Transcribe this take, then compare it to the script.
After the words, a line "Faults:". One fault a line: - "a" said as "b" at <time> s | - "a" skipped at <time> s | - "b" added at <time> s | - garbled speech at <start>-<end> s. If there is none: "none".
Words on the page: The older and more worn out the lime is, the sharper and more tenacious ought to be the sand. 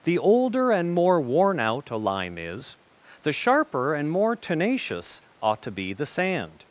The older and more worn out a lime is, the sharper and more tenacious ought to be the sand.
Faults:
- "the" said as "a" at 1.9 s